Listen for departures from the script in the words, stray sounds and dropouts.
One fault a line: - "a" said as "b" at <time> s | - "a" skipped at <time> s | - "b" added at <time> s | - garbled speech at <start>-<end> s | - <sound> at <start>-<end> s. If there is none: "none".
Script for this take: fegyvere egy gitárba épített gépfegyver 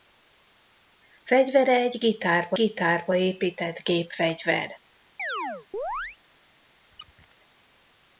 - "gitárba" added at 2.5 s
- chirp at 5.2-6.2 s
- squeak at 6.9-7.3 s